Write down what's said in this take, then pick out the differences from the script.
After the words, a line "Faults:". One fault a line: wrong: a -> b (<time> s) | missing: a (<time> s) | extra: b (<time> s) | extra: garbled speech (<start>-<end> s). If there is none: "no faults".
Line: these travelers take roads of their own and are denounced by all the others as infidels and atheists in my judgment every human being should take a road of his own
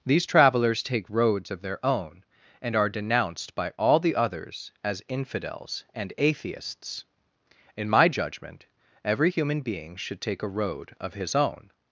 these travelers take roads of their own and are denounced by all the others as infidels and atheists in my judgment every human being should take a road of his own
Faults:
no faults